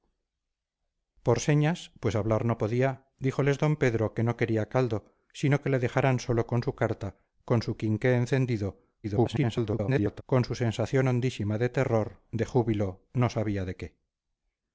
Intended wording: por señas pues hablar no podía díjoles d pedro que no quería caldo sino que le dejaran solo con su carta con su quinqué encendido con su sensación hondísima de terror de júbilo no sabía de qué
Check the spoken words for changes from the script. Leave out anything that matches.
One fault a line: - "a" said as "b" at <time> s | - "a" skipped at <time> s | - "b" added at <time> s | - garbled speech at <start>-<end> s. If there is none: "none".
- garbled speech at 9.0-10.2 s